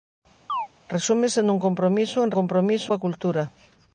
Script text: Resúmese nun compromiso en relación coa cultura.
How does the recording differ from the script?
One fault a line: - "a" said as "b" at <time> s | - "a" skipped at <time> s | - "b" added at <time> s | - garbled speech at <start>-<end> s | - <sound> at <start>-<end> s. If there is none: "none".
- chirp at 0.5-0.7 s
- "relación" said as "compromiso" at 2.4 s